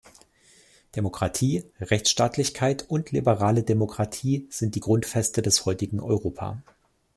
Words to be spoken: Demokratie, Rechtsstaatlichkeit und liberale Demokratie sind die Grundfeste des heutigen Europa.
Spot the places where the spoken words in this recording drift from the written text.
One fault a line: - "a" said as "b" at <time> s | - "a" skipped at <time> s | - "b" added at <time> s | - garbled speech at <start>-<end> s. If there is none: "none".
none